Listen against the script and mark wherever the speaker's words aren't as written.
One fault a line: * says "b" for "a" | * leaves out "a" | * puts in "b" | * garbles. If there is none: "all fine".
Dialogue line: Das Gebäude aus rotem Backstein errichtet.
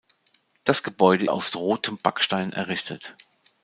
all fine